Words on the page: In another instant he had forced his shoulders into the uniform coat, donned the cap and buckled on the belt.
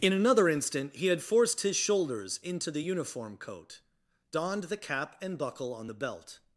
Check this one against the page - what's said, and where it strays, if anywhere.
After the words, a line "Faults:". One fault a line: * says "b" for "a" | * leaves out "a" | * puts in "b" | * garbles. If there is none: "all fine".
In another instant he had forced his shoulders into the uniform coat, donned the cap and buckle on the belt.
Faults:
* says "buckle" for "buckled"